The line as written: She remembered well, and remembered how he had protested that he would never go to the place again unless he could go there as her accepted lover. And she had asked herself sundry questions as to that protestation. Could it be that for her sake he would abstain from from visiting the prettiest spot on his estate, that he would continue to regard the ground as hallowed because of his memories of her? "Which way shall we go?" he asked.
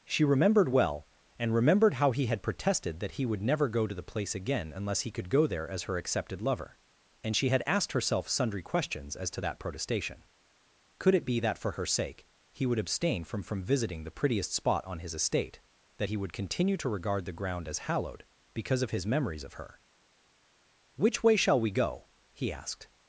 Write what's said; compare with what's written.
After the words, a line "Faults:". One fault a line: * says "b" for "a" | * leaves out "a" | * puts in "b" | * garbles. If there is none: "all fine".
She remembered well, and remembered how he had protested that he would never go to the place again unless he could go there as her accepted lover. And she had asked herself sundry questions as to that protestation. Could it be that for her sake he would abstain from from visiting the prettiest spot on his estate, that he would continue to regard the ground as hallowed because of his memories of her? "Which way shall we go?" he asked.
Faults:
all fine